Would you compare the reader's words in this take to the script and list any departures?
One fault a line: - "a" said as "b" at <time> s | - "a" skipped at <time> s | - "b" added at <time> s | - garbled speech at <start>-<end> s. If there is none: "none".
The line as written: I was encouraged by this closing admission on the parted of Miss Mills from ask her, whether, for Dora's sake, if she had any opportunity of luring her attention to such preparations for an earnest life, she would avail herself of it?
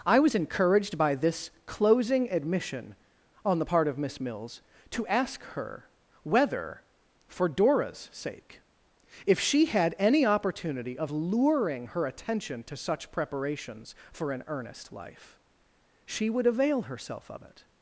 - "parted" said as "part" at 3.6 s
- "from" said as "to" at 4.9 s